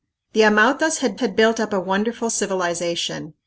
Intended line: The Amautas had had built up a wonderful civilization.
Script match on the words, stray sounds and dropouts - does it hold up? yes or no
yes